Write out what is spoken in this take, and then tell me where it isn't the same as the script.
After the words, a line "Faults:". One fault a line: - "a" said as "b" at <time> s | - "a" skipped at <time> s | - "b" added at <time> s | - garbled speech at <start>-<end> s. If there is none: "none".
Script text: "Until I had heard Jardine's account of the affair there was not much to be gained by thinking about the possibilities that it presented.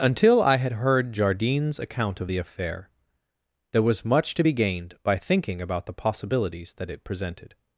"Until I had heard Jardine's account of the affair there was much to be gained by thinking about the possibilities that it presented.
Faults:
- "not" skipped at 4.0 s